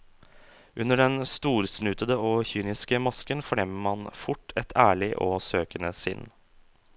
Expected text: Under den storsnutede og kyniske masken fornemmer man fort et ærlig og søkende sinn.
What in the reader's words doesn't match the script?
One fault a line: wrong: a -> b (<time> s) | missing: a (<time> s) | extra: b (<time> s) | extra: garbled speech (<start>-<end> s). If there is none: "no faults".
no faults